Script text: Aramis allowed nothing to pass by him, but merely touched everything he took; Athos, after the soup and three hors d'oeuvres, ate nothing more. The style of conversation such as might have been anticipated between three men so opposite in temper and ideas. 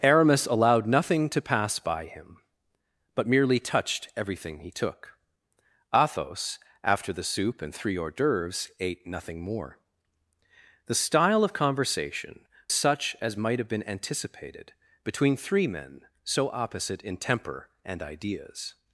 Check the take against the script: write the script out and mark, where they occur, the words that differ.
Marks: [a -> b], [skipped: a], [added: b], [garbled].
Aramis allowed nothing to pass by him, but merely touched everything he took; Athos, after the soup and three hors d'oeuvres, ate nothing more. The style of conversation such as might have been anticipated between three men so opposite in temper and ideas.